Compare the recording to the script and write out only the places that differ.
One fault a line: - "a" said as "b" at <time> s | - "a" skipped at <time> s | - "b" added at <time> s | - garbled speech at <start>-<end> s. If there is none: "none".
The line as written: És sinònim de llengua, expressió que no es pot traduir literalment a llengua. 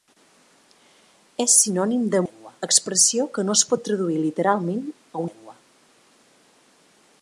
none